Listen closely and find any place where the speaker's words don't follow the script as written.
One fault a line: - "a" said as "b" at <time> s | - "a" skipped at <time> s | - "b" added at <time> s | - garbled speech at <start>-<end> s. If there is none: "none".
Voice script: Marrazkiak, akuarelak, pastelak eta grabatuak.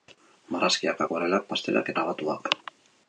- "eta" skipped at 1.9 s